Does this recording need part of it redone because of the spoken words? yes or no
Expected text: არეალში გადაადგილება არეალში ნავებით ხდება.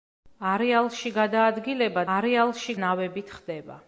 no